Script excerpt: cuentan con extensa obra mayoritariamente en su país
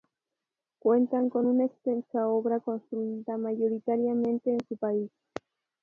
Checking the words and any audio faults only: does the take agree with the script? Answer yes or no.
no